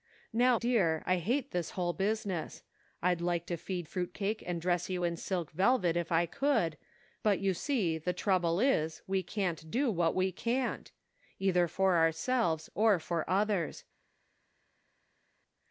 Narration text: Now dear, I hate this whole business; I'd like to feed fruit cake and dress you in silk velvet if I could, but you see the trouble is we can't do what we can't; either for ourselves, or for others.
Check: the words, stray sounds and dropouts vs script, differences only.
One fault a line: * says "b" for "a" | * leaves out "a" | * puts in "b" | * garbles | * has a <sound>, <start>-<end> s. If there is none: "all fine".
all fine